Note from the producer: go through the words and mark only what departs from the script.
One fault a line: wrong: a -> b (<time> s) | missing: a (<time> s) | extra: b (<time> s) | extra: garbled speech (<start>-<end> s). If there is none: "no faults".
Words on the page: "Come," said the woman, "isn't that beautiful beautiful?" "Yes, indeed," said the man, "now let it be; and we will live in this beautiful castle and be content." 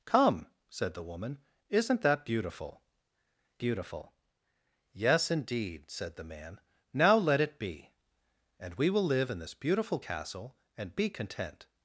no faults